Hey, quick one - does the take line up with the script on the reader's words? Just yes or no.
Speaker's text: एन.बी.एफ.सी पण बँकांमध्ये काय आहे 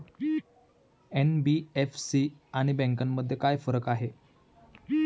no